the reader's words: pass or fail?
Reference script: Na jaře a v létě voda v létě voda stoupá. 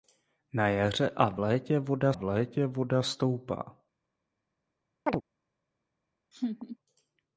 pass